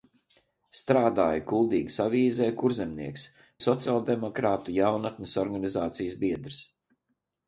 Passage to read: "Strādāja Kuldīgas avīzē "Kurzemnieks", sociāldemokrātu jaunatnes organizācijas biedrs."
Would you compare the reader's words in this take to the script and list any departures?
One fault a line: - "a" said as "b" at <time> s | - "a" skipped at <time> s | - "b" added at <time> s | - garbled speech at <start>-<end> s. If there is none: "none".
none